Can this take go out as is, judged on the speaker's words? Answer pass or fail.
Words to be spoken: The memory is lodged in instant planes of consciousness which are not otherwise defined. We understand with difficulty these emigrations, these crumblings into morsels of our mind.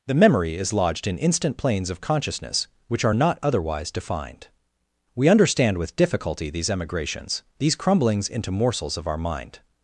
pass